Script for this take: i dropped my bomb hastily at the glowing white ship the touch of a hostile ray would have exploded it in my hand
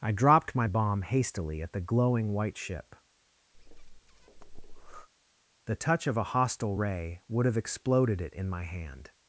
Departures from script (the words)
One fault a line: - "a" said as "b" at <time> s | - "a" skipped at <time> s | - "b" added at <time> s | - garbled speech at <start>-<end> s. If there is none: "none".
none